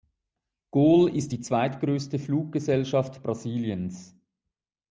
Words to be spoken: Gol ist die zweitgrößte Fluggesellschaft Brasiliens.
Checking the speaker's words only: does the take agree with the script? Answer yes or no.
yes